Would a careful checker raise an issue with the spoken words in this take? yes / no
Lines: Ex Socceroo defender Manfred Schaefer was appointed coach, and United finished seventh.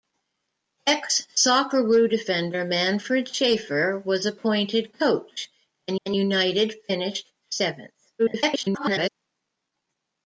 yes